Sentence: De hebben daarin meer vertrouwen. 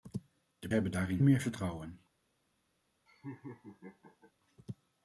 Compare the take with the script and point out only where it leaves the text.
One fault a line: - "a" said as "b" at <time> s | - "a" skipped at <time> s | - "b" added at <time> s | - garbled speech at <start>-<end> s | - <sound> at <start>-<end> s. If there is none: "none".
- laugh at 3.1-4.3 s